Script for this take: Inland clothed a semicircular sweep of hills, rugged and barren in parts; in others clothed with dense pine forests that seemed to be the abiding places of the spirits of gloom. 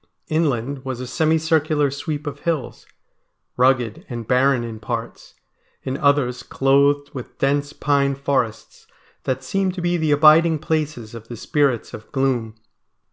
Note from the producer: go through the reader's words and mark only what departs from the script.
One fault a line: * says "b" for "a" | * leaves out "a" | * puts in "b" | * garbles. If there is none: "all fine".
* says "was" for "clothed"